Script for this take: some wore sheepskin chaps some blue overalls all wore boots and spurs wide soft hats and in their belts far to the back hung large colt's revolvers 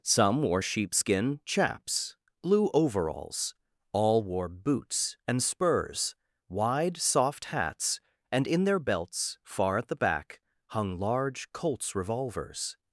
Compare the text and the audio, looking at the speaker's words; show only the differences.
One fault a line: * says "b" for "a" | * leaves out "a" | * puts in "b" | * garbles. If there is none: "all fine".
* leaves out "some"
* says "at" for "to"